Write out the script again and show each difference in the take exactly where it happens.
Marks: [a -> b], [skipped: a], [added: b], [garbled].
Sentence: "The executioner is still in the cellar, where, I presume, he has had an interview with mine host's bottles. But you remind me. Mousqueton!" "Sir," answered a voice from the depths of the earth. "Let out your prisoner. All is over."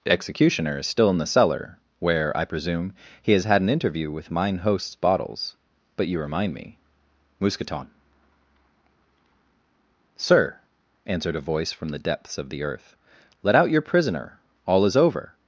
"The executioner is still in the cellar, where, I presume, he has had an interview with mine host's bottles. But you remind me. Mousqueton!" "Sir," answered a voice from the depths of the earth. "Let out your prisoner. All is over."